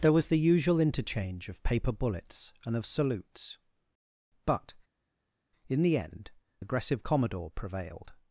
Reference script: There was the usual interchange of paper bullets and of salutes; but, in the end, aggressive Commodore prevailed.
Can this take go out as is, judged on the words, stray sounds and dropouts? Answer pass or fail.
pass